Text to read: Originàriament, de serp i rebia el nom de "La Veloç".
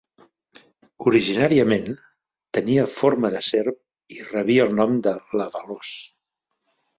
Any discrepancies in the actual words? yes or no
yes